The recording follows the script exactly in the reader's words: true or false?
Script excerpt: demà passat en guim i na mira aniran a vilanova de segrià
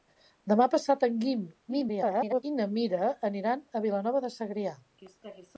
false